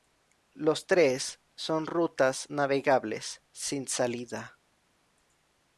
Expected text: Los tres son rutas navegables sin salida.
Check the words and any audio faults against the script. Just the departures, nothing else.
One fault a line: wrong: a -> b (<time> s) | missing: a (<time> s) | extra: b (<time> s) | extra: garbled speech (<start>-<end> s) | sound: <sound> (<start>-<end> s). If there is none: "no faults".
no faults